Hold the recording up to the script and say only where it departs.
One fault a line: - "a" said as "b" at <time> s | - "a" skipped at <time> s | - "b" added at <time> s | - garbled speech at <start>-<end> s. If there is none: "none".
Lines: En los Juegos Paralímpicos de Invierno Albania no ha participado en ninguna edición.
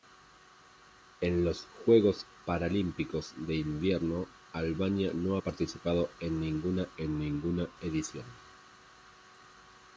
- "en ninguna" added at 7.0 s